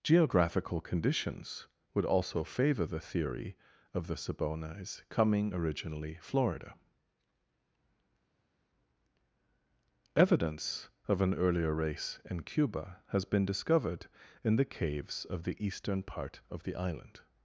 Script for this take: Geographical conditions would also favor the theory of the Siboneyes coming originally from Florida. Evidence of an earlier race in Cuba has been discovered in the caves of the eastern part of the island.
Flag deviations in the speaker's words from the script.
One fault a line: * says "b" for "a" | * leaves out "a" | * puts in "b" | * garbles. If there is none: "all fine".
* leaves out "from"